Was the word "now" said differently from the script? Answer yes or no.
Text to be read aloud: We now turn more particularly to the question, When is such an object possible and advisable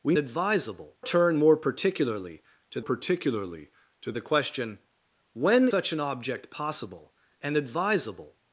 yes